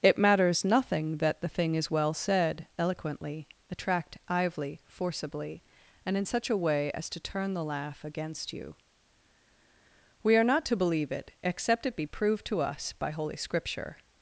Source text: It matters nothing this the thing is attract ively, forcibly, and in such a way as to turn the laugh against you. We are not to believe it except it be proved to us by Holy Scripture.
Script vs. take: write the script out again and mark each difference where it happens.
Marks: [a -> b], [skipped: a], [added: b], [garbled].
It matters nothing [this -> that] the thing is [added: well said eloquently] attract ively, forcibly, and in such a way as to turn the laugh against you. We are not to believe it except it be proved to us by Holy Scripture.